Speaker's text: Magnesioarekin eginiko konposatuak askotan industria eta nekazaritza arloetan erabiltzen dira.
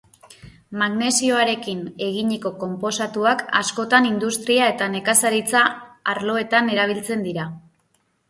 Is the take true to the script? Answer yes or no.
yes